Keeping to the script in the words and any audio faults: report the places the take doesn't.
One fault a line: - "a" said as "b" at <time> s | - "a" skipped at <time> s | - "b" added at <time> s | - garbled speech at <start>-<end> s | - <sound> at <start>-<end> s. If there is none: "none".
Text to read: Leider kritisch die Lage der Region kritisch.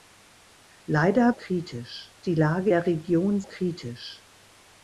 none